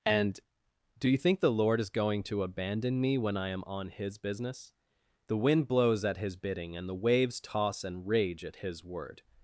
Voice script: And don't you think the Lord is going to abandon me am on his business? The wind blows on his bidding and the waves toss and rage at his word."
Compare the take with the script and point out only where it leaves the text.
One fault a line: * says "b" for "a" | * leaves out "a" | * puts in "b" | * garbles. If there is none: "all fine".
* says "do" for "don't"
* puts in "when I"
* says "at" for "on"